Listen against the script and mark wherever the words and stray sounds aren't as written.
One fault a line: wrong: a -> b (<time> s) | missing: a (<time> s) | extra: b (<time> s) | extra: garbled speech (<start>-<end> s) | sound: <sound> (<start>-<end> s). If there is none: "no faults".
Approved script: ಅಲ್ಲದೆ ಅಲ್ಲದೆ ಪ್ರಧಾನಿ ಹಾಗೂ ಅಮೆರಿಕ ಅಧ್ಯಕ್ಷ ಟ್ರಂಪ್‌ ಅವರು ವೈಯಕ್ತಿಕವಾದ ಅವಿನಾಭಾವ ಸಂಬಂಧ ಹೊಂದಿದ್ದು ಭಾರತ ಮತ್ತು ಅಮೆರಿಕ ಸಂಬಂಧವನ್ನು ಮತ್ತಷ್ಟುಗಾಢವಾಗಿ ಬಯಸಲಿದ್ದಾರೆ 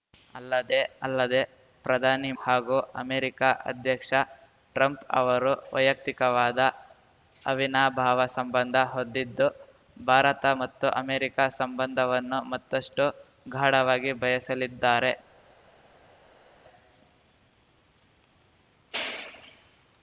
no faults